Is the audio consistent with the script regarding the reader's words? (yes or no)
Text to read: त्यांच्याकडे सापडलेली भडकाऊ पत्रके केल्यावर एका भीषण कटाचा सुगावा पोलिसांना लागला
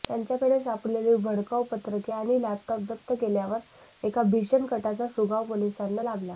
no